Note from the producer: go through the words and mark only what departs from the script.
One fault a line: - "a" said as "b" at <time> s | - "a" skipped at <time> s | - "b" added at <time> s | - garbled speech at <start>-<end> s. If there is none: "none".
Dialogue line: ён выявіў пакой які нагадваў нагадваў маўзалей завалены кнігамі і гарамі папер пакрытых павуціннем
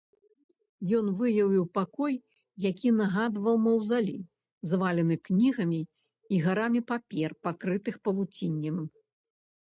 - "нагадваў" skipped at 3.5 s